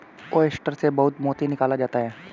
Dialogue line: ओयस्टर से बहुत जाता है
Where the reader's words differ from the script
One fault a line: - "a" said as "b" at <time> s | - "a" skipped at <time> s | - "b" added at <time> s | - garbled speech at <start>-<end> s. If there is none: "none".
- "मोती निकाला" added at 1.2 s